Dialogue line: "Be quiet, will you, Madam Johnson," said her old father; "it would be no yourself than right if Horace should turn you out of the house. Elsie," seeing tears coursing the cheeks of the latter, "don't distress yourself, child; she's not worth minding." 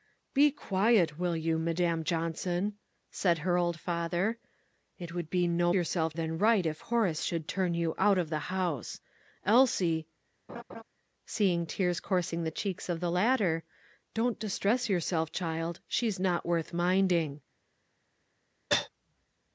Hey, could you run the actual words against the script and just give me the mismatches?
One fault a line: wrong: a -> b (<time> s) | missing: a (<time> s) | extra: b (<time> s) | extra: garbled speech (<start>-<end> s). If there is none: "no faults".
no faults